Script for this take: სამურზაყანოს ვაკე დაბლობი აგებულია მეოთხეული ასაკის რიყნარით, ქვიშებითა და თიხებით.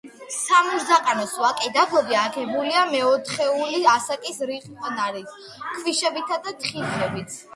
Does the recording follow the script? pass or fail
pass